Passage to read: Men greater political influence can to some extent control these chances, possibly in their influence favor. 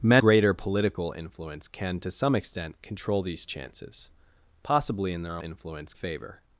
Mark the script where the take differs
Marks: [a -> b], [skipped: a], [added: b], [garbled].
Men greater political influence can to some extent control these chances, possibly in their influence favor.